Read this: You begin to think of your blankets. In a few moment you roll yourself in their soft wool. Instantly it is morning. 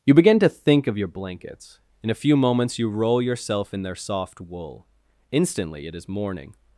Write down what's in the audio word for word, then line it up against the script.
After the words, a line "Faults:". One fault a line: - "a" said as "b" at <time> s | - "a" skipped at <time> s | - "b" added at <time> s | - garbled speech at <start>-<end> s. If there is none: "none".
You begin to think of your blankets. In a few moments you roll yourself in their soft wool. Instantly it is morning.
Faults:
- "moment" said as "moments" at 2.4 s